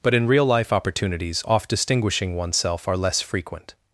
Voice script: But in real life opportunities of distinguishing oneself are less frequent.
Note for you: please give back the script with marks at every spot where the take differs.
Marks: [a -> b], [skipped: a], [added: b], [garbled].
But in real life opportunities [of -> off] distinguishing oneself are less frequent.